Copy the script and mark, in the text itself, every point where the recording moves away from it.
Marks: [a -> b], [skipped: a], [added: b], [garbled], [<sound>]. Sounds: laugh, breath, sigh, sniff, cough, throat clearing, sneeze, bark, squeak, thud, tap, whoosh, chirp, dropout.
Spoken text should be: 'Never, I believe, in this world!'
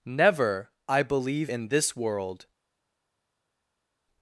'Never, I believe, in this world!'